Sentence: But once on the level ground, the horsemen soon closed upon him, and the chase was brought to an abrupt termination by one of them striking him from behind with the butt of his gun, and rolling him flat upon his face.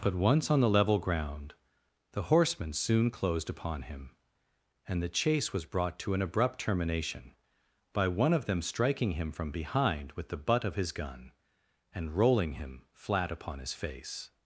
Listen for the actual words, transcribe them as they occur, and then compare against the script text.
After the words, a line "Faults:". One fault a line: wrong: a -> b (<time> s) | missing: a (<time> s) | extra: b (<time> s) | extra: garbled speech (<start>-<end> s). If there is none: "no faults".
But once on the level ground, the horsemen soon closed upon him, and the chase was brought to an abrupt termination by one of them striking him from behind with the butt of his gun, and rolling him flat upon his face.
Faults:
no faults